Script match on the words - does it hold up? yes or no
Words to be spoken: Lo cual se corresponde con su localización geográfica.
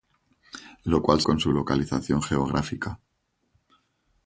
no